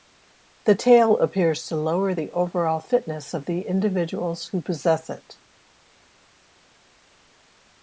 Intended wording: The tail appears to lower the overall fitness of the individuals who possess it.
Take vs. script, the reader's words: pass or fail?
pass